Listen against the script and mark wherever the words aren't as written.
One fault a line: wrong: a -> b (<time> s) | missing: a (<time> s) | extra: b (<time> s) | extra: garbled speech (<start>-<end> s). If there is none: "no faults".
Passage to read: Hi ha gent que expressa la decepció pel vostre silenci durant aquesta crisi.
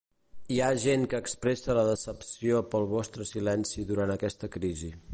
no faults